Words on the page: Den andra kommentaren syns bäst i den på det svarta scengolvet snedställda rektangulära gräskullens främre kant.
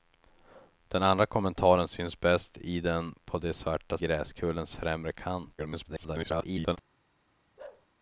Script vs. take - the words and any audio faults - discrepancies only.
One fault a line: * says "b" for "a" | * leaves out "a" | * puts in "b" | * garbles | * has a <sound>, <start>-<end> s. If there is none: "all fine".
* leaves out "scengolvet snedställda rektangulära"
* garbles
* has a bark, 7.6-7.9 s